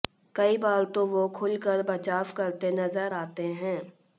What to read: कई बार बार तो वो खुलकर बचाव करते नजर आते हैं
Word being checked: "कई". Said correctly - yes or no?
yes